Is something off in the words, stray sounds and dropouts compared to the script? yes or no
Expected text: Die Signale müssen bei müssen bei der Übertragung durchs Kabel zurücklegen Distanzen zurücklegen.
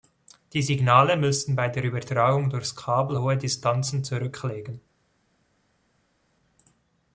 yes